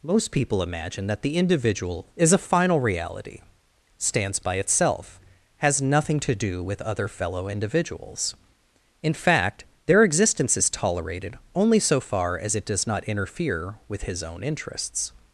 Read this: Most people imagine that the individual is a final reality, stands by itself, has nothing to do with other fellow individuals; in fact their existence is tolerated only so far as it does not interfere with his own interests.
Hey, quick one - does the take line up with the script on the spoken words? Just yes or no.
yes